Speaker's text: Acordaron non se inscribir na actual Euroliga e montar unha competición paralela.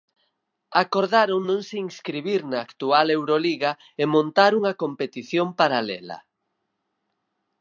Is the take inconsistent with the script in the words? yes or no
no